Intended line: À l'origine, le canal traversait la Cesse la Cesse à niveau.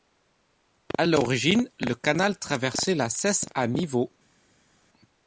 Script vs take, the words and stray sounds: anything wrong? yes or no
yes